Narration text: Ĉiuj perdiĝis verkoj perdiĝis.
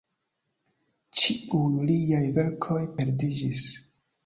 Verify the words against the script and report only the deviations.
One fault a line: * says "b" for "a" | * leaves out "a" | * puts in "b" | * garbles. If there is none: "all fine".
* says "liaj" for "perdiĝis"